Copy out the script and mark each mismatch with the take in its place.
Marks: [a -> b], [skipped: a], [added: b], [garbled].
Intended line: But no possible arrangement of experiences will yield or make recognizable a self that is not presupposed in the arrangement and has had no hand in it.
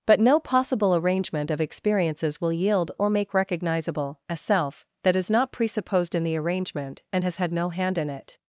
But no possible arrangement of experiences will yield or make recognizable a self that is not presupposed in the arrangement and has had no hand in it.